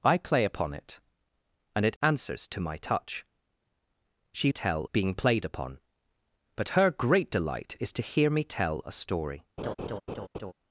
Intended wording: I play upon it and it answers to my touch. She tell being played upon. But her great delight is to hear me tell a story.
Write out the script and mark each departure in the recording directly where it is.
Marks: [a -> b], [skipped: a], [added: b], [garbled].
I play upon it and it answers to my touch. She tell being played upon. But her great delight is to hear me tell a story.